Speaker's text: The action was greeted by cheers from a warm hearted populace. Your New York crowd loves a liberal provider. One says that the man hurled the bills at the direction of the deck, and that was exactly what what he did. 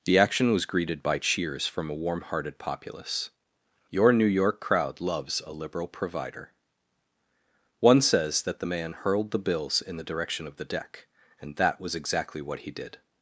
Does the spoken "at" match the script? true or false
false